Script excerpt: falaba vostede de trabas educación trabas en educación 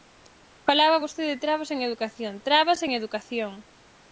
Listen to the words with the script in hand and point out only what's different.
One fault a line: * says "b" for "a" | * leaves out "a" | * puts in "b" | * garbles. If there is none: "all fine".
* puts in "en"